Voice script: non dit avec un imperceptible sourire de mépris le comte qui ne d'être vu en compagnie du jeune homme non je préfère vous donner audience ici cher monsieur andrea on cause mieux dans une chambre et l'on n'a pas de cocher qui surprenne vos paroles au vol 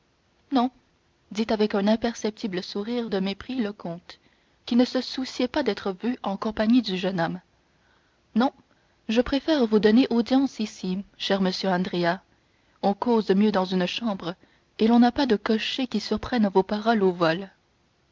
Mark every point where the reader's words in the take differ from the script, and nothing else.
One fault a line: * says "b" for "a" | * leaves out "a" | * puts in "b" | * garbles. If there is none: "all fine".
* puts in "se souciait pas"